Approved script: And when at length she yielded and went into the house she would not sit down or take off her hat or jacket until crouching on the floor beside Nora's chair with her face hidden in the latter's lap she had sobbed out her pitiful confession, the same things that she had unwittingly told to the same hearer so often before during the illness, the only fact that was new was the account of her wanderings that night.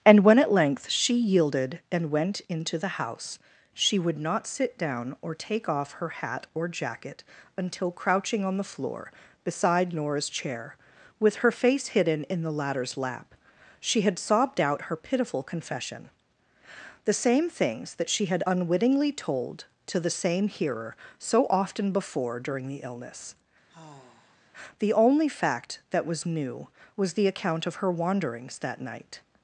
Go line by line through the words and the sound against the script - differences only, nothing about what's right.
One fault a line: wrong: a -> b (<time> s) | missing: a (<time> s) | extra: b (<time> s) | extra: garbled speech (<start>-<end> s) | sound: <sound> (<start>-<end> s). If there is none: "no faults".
sound: sigh (23.7-24.5 s)